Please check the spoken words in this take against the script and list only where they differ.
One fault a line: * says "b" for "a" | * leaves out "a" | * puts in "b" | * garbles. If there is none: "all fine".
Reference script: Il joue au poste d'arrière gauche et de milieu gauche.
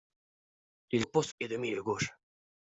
* leaves out "joue"
* leaves out "d'arrière gauche"